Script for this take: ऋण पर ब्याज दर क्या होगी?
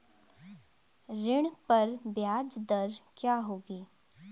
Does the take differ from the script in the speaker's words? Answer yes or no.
no